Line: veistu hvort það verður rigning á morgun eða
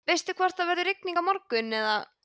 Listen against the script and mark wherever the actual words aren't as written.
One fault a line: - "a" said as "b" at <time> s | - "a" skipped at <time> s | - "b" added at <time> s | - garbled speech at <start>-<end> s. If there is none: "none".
none